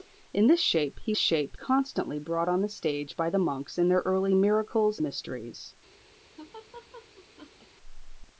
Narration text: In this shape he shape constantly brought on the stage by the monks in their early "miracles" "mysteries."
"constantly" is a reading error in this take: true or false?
false